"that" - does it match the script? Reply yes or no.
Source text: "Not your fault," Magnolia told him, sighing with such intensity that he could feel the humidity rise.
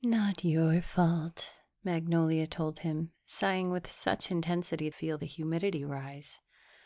no